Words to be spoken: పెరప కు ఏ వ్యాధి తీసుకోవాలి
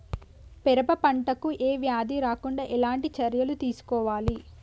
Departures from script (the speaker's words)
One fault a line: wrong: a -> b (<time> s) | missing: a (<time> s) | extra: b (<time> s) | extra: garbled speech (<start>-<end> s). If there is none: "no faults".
extra: పంట (1.0 s)
extra: రాకుండా ఎలాంటి చర్యలు (2.2 s)